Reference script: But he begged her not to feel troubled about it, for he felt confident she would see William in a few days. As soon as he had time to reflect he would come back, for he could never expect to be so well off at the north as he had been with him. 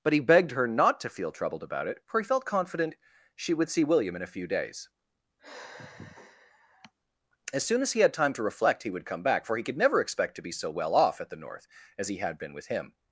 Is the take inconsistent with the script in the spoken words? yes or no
no